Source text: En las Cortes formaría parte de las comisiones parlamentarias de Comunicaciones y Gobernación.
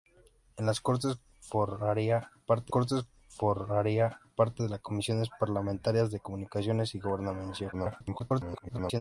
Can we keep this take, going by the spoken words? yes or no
no